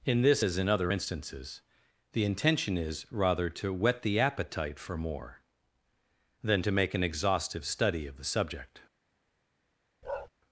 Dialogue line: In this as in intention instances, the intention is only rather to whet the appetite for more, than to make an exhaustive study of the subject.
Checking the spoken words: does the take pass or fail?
fail